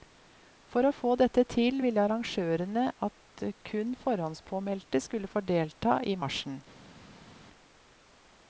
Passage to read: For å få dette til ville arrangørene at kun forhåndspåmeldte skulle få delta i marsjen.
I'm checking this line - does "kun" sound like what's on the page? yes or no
yes